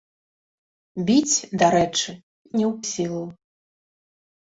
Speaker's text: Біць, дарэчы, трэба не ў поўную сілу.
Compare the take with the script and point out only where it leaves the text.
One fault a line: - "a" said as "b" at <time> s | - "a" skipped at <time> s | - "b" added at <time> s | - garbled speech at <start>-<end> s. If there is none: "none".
- "трэба" skipped at 2.1 s
- "поўную" skipped at 2.7 s